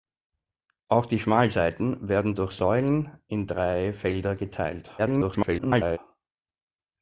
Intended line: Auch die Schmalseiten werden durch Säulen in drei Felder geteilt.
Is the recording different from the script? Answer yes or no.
yes